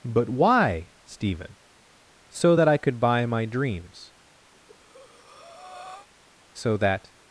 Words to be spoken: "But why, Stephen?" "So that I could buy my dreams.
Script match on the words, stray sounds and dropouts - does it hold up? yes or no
no